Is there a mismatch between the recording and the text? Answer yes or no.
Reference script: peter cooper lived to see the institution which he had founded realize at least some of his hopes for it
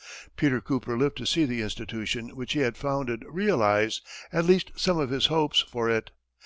no